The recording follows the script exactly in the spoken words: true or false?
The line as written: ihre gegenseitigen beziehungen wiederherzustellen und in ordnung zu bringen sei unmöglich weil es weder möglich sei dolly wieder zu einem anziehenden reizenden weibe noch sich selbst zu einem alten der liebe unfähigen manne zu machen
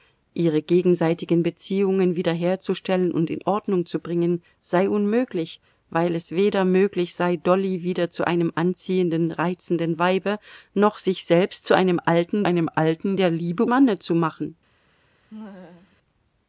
false